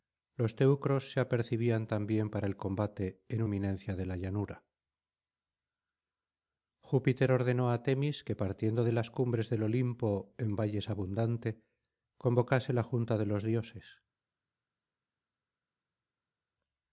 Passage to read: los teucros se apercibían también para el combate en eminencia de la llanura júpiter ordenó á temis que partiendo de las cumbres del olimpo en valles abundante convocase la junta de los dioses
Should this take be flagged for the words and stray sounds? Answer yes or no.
no